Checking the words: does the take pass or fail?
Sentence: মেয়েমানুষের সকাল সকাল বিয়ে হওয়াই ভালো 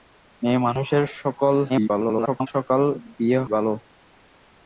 fail